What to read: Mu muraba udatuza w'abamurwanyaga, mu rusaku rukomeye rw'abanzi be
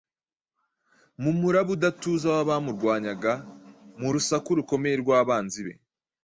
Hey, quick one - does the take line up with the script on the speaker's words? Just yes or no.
yes